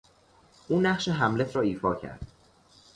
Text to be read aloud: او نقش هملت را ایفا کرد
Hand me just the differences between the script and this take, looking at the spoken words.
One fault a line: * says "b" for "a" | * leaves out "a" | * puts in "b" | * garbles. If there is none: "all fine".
all fine